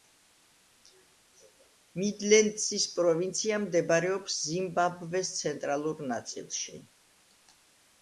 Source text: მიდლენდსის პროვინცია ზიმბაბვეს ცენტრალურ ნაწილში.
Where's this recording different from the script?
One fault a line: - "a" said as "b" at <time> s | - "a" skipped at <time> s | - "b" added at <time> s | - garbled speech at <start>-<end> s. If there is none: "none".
- "მდებარეობს" added at 3.7 s